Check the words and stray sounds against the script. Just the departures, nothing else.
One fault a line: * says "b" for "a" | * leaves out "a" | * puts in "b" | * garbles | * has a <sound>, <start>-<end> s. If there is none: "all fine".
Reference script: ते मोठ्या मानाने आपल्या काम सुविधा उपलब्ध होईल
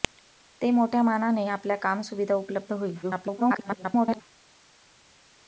* garbles